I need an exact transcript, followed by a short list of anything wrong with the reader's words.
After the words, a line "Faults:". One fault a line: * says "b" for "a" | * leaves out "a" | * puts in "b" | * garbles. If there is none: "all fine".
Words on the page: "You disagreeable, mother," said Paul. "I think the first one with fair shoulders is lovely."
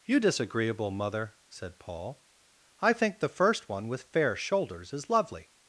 "You disagreeable, mother," said Paul. "I think the first one with fair shoulders is lovely."
Faults:
all fine